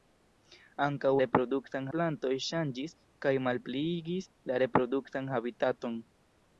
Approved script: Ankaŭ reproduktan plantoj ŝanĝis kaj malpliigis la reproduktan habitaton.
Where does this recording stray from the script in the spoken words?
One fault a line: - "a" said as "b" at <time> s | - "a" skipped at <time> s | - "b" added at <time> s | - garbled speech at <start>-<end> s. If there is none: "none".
none